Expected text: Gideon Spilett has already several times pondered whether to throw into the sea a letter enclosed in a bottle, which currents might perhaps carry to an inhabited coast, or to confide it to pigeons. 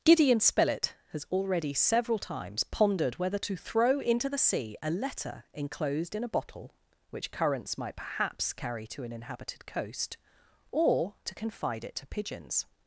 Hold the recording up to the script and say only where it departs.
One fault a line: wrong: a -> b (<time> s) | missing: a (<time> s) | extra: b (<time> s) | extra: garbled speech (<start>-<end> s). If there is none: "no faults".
no faults